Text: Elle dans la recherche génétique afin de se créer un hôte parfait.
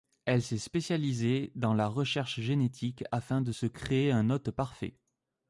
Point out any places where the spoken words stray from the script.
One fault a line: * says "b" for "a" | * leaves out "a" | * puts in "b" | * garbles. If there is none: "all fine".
* puts in "s'est spécialisée"